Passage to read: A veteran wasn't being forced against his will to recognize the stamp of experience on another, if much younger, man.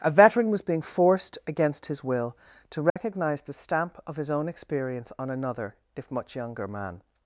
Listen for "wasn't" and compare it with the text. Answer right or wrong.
wrong